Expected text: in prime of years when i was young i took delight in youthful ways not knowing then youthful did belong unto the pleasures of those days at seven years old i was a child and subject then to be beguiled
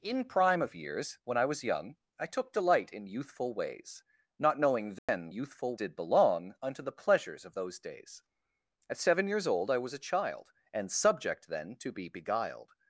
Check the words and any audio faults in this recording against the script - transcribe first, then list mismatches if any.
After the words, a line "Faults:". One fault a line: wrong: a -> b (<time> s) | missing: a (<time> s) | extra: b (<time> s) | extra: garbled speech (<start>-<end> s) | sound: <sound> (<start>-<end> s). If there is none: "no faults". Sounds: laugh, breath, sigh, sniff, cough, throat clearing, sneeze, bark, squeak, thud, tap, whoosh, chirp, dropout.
in prime of years when i was young i took delight in youthful ways not knowing then youthful did belong unto the pleasures of those days at seven years old i was a child and subject then to be beguiled
Faults:
sound: dropout (5.0-5.1 s)